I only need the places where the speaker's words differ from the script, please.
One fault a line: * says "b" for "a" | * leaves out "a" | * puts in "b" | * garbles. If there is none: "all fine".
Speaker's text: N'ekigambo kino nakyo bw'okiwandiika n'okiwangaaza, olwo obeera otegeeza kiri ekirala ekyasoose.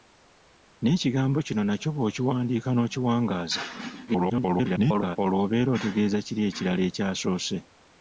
* garbles